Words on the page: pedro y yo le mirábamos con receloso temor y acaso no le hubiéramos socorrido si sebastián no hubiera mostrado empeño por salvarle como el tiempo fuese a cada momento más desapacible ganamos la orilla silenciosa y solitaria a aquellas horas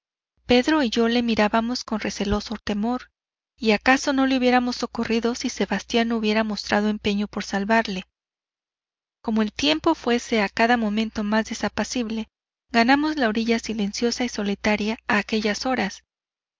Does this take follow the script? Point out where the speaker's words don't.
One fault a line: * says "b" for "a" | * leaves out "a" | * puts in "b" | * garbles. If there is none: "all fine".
all fine